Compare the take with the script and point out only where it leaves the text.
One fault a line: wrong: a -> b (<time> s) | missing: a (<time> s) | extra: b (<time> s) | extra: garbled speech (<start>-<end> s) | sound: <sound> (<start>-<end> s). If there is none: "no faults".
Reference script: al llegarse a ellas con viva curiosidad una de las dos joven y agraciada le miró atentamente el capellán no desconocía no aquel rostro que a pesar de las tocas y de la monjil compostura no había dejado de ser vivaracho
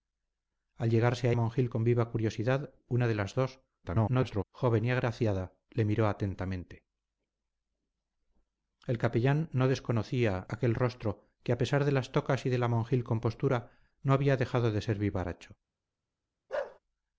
wrong: ellas -> monjil (1.3 s)
extra: garbled speech (3.8-4.4 s)
missing: no (10.5 s)
sound: bark (16.5-16.8 s)